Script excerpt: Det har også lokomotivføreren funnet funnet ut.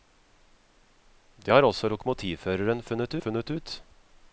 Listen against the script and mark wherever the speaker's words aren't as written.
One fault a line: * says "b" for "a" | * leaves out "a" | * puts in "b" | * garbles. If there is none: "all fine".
all fine